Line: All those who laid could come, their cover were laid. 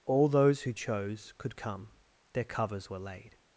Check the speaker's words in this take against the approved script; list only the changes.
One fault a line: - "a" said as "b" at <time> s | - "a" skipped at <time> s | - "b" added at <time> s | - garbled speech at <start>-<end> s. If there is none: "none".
- "laid" said as "chose" at 0.7 s
- "cover" said as "covers" at 2.5 s